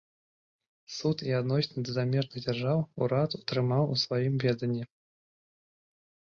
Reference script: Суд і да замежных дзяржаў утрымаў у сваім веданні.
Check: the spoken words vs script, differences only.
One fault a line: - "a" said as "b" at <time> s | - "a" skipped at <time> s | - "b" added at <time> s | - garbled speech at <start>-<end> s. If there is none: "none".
- "адносіны" added at 1.4 s
- "урад" added at 3.1 s